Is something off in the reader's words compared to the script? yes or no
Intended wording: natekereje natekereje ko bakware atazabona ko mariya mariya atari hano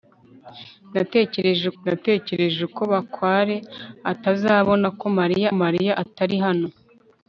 no